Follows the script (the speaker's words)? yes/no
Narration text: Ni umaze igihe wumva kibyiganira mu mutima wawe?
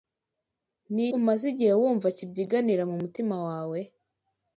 yes